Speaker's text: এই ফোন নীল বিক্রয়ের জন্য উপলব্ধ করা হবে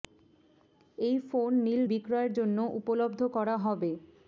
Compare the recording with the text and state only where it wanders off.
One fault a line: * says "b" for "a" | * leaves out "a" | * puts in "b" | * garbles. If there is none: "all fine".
all fine